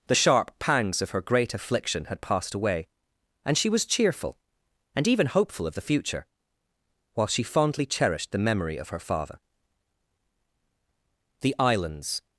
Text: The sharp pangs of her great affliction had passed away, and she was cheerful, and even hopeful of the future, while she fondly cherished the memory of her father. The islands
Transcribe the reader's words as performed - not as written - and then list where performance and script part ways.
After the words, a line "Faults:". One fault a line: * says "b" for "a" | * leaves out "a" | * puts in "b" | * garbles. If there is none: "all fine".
The sharp pangs of her great affliction had passed away, and she was cheerful, and even hopeful of the future, while she fondly cherished the memory of her father. The islands
Faults:
all fine